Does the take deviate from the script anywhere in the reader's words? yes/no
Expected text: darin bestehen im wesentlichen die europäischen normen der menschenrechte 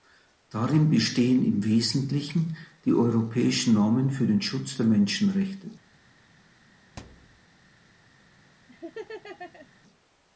yes